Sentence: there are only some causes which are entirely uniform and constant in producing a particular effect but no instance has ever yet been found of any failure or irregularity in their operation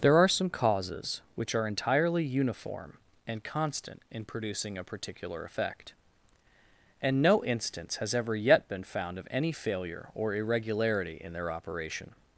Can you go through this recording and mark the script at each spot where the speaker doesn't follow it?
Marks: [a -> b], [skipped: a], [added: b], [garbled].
there are [skipped: only] some causes which are entirely uniform and constant in producing a particular effect [but -> and] no instance has ever yet been found of any failure or irregularity in their operation